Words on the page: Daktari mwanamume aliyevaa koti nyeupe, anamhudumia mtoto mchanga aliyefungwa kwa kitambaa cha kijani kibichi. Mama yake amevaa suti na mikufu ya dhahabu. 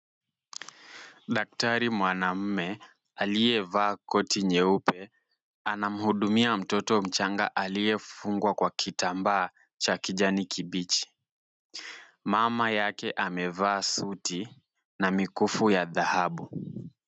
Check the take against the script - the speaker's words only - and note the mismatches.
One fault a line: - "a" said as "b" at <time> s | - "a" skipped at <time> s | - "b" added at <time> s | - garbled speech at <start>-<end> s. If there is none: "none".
none